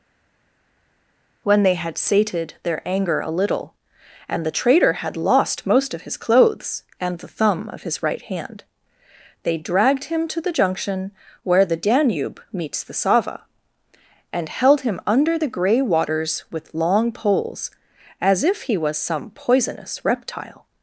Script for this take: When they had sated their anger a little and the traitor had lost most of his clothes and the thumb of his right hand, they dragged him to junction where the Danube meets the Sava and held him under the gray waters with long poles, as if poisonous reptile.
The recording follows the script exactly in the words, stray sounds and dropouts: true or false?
false